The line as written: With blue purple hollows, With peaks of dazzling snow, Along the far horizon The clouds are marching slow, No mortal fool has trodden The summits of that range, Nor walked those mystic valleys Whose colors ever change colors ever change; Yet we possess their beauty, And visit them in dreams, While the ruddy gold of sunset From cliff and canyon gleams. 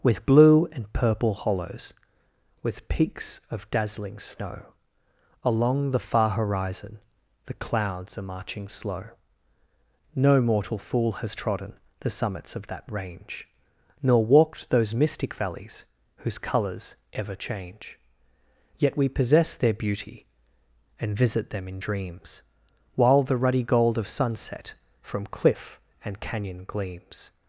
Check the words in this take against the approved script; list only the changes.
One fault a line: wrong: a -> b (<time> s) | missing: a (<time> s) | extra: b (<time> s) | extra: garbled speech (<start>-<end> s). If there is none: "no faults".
extra: and (0.7 s)
missing: colors ever change (18.0 s)